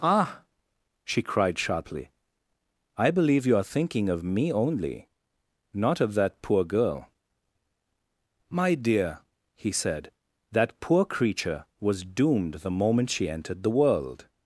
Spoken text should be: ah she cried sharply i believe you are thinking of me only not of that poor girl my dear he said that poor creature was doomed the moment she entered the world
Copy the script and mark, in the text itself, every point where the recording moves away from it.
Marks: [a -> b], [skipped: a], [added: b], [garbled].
ah she cried sharply i believe you are thinking of me only not of that poor girl my dear he said that poor creature was doomed the moment she entered the world